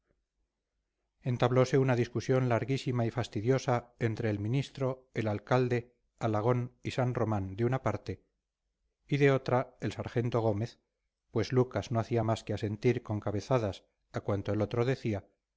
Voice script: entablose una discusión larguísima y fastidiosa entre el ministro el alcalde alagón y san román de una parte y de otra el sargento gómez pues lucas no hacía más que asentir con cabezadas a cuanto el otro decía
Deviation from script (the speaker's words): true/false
false